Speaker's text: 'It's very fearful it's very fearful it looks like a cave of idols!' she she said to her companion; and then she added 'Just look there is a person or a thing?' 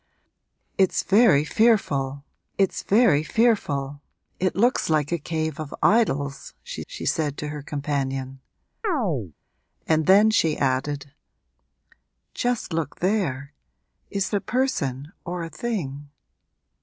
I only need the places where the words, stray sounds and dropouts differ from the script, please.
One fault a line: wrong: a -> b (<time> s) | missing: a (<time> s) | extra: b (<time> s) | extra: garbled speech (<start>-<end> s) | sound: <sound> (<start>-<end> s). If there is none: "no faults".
sound: chirp (8.8-9.3 s)